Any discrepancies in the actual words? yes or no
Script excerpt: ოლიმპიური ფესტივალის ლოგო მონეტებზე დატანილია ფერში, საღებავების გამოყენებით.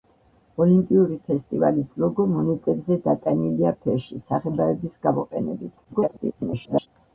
yes